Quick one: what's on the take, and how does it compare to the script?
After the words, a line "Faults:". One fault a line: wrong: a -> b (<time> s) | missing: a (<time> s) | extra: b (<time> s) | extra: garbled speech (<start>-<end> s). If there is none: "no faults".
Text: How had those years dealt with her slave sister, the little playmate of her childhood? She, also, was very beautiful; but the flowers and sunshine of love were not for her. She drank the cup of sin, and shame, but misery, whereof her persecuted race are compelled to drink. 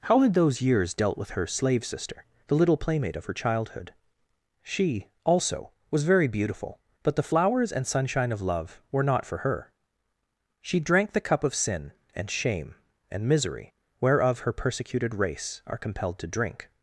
How had those years dealt with her slave sister, the little playmate of her childhood? She, also, was very beautiful; but the flowers and sunshine of love were not for her. She drank the cup of sin, and shame, and misery, whereof her persecuted race are compelled to drink.
Faults:
wrong: but -> and (13.1 s)